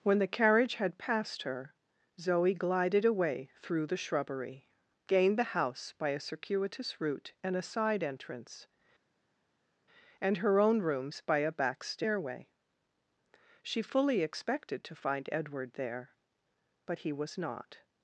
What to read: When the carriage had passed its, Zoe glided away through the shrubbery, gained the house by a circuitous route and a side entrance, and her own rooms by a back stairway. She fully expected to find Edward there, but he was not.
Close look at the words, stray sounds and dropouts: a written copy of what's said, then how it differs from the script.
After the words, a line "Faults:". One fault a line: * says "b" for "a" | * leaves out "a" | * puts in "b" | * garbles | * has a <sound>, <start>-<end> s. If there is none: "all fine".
When the carriage had passed her, Zoe glided away through the shrubbery, gained the house by a circuitous route and a side entrance, and her own rooms by a back stairway. She fully expected to find Edward there, but he was not.
Faults:
* says "her" for "its"